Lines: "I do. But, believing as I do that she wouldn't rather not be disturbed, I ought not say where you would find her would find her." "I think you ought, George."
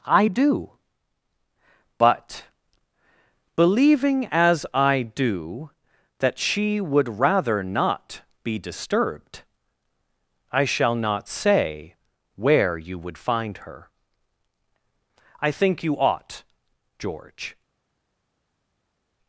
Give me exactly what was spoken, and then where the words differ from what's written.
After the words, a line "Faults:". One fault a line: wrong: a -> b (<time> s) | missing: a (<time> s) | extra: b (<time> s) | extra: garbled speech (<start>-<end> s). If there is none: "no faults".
"I do. But, believing as I do that she would rather not be disturbed, I shall not say where you would find her." "I think you ought, George."
Faults:
wrong: wouldn't -> would (6.8 s)
wrong: ought -> shall (10.6 s)
missing: would find her (13.9 s)